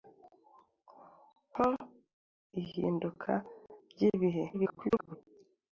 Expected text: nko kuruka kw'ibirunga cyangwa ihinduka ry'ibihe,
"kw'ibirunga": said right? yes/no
no